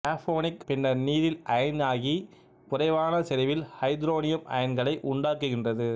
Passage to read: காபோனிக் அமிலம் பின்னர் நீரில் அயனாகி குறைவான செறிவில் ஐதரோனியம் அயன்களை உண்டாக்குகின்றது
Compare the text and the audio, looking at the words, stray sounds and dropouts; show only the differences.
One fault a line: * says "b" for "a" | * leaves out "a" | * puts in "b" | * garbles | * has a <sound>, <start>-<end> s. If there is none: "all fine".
* leaves out "அமிலம்"